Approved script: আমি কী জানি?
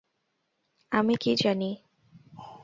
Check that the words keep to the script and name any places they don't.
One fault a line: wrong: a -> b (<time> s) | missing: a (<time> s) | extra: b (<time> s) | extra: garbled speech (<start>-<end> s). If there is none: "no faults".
no faults